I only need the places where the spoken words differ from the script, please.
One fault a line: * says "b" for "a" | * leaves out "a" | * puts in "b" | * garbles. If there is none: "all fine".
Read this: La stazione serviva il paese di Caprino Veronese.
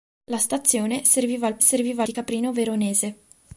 * says "serviva" for "paese"